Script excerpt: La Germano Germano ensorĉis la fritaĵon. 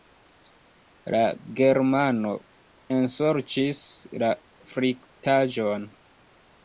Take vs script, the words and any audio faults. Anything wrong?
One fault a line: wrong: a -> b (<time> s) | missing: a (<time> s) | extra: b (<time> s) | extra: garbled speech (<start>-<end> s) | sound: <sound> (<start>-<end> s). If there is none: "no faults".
missing: Germano (2.3 s)